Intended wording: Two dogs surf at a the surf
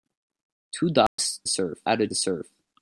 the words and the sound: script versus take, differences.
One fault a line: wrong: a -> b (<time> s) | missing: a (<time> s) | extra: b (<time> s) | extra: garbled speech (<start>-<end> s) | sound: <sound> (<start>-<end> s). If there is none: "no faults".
sound: dropout (1.1-1.2 s)